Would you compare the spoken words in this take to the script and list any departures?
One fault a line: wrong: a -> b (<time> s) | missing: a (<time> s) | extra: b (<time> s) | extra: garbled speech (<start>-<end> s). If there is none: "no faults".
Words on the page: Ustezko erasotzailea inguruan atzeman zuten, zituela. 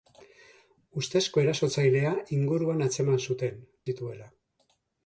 no faults